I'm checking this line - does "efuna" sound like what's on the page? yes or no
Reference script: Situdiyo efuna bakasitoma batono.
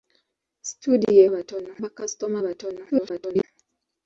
no